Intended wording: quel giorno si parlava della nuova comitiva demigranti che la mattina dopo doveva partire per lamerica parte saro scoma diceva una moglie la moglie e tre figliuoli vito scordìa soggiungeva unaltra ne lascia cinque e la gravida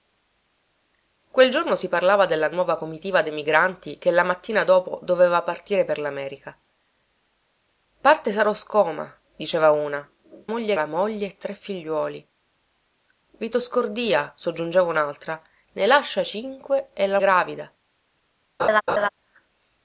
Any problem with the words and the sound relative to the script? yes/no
yes